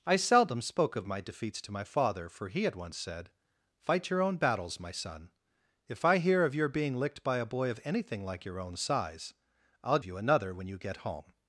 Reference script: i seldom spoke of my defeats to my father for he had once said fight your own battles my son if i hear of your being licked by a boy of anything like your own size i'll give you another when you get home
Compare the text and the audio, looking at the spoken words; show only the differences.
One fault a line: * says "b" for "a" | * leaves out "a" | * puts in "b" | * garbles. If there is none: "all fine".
* leaves out "give"